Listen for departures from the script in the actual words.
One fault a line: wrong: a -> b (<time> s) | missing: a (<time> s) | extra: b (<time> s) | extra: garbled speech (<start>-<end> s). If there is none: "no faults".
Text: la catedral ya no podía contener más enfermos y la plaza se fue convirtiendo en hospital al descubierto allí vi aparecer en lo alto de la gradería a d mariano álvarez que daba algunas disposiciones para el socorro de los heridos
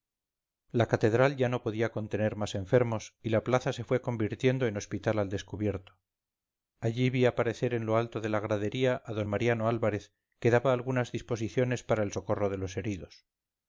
no faults